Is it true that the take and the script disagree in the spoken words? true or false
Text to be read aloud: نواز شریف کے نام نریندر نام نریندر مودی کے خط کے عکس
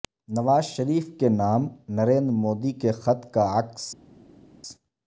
true